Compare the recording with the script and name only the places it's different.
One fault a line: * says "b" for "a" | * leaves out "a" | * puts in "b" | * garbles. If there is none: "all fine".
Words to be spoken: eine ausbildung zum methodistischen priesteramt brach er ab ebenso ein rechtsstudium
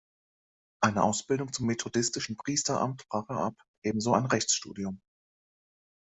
all fine